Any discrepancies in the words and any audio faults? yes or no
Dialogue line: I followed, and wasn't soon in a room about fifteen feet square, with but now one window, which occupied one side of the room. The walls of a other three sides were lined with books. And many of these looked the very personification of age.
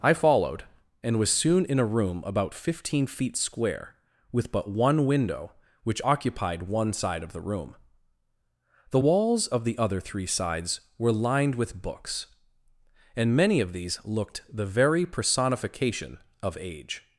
yes